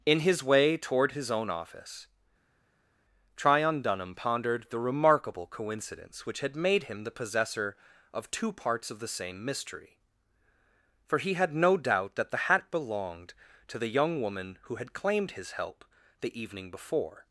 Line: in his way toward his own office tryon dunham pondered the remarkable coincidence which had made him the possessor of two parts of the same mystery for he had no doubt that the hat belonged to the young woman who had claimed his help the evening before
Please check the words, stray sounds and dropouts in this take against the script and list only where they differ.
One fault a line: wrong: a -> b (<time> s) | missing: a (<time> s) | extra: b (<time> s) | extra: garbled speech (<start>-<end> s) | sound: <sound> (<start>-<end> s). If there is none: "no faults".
no faults